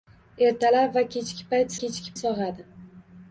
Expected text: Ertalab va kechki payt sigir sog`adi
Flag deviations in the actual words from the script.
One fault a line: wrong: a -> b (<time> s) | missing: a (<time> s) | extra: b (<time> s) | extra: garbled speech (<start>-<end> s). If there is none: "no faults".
wrong: sigir -> kechki (1.8 s)